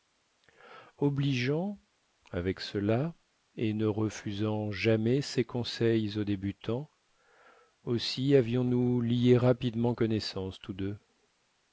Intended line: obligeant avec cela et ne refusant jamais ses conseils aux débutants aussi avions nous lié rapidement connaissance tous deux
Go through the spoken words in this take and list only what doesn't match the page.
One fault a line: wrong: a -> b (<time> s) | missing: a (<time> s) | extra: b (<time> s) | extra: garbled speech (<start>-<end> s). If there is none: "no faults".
no faults